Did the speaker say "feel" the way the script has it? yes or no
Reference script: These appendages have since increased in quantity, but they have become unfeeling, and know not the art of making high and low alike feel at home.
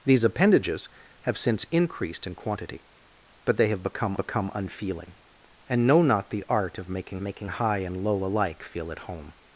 yes